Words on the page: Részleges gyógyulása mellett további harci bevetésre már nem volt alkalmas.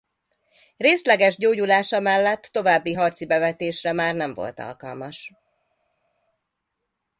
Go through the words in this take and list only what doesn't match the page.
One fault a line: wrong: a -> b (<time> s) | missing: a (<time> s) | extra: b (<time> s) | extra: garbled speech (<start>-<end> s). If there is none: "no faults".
no faults